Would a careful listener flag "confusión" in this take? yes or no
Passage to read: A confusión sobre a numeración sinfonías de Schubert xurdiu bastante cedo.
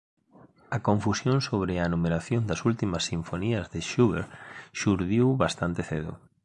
no